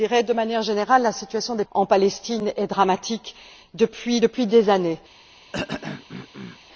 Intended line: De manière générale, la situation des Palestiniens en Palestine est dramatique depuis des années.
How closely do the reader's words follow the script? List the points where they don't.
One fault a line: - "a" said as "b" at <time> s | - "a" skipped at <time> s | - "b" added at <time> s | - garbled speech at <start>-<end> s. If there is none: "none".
- "Palestiniens" skipped at 1.6 s